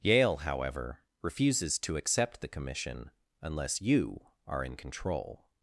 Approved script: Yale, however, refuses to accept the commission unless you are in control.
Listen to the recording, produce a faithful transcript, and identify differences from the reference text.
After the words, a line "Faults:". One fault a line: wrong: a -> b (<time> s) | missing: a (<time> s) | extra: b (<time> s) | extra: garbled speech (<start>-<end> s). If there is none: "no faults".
Yale, however, refuses to accept the commission unless you are in control.
Faults:
no faults